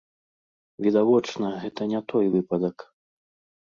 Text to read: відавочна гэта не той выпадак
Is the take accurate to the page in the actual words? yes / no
yes